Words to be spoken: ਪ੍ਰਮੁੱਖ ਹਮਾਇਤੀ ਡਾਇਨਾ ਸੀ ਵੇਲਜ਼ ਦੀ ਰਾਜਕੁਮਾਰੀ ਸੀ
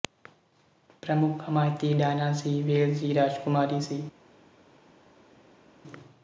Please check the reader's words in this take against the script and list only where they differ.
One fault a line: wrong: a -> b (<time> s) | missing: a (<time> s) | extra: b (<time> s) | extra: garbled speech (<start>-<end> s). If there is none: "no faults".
no faults